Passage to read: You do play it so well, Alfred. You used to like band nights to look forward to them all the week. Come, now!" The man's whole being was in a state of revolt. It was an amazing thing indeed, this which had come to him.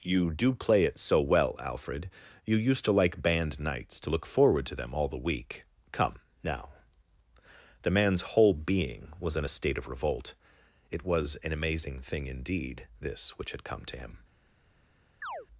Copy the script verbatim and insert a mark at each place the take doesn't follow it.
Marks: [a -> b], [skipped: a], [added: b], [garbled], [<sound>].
You do play it so well, Alfred. You used to like band nights to look forward to them all the week. Come, now!" The man's whole being was in a state of revolt. It was an amazing thing indeed, this which had come to him. [chirp]